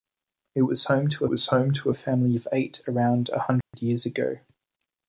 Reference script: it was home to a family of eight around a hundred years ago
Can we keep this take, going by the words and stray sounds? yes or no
no